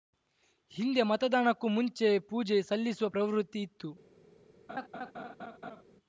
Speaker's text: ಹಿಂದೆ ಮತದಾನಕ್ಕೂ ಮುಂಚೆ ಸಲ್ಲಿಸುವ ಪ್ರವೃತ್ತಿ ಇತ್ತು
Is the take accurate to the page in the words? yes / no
no